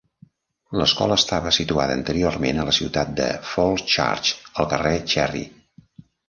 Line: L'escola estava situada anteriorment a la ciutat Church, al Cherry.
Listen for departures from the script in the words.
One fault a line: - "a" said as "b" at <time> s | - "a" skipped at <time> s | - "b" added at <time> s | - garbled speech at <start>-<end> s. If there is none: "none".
- "de Falls" added at 3.2 s
- "carrer" added at 4.8 s